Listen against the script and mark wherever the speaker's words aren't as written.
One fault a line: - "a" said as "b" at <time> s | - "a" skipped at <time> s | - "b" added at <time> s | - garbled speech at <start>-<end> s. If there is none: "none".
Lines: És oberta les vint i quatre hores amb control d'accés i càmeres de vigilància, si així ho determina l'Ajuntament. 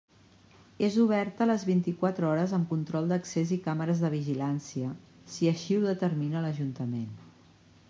none